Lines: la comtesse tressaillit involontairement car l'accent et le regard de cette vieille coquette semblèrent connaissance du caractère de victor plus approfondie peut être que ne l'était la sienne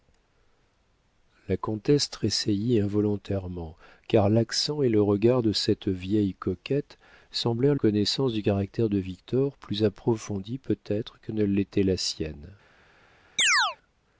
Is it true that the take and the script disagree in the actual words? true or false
false